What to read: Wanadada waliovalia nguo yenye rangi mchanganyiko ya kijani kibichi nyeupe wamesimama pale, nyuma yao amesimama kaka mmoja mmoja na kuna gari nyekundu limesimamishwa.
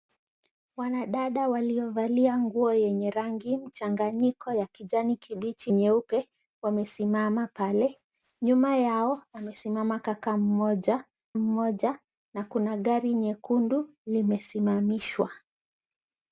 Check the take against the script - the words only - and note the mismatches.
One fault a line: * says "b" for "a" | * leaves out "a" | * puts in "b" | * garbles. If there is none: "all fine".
all fine